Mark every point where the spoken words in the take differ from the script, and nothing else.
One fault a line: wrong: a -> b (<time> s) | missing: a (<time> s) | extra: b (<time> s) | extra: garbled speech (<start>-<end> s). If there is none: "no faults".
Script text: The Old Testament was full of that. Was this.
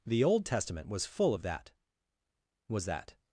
wrong: this -> that (2.8 s)